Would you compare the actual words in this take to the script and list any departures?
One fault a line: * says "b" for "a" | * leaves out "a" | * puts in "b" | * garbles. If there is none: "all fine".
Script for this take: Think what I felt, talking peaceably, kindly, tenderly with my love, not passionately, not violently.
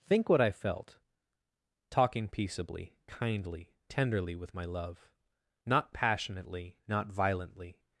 all fine